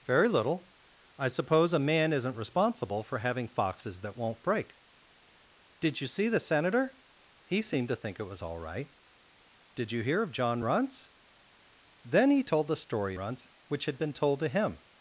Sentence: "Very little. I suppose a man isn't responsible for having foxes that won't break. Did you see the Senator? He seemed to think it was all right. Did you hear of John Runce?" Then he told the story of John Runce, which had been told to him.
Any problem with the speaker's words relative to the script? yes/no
yes